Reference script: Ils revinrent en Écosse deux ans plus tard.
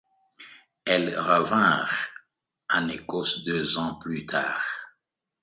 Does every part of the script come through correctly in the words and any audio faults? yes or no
no